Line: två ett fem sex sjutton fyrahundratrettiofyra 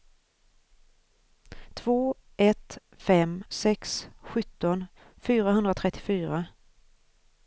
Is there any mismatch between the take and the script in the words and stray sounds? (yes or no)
no